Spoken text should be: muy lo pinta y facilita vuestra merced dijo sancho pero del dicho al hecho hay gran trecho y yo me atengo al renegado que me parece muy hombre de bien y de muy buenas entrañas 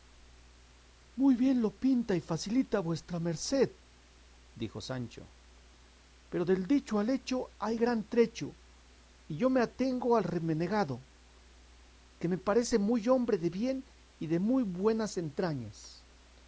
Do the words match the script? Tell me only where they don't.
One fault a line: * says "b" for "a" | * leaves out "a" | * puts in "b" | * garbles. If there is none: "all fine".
* puts in "bien"